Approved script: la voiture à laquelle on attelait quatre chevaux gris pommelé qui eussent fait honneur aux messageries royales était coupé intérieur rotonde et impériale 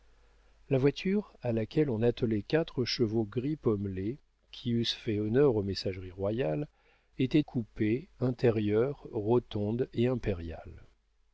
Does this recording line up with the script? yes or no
yes